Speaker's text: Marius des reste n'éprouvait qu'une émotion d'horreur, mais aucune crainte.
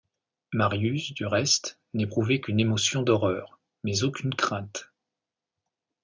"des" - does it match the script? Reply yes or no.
no